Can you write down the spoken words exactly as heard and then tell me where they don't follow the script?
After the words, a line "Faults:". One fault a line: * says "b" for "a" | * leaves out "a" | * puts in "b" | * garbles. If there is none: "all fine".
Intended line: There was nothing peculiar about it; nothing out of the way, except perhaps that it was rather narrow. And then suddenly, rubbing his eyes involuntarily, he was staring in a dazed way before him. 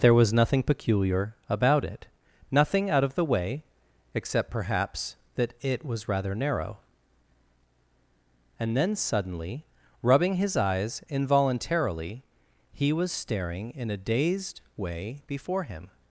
There was nothing peculiar about it; nothing out of the way, except perhaps that it was rather narrow. And then suddenly, rubbing his eyes involuntarily, he was staring in a dazed way before him.
Faults:
all fine